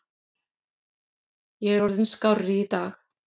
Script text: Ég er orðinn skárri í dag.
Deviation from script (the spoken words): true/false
false